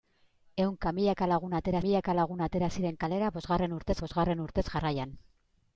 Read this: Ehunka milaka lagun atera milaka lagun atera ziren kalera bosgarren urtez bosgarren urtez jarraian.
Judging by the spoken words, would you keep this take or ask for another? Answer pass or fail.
pass